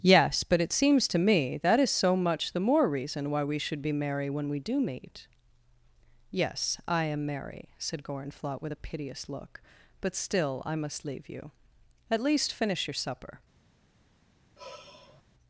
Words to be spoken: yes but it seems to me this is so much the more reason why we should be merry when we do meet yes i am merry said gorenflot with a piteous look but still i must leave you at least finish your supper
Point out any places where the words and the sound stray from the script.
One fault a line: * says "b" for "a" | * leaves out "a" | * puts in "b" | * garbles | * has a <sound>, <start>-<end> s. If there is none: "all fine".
* says "that" for "this"
* has a sigh, 14.6-15.2 s